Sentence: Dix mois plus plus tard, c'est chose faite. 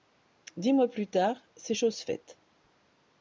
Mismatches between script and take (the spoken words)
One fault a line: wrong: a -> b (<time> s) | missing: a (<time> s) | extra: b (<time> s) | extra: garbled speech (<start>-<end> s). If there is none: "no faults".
missing: plus (1.1 s)